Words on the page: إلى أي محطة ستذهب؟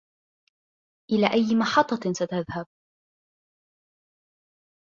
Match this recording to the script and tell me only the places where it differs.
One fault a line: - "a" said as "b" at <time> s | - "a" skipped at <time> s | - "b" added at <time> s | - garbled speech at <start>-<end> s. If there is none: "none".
none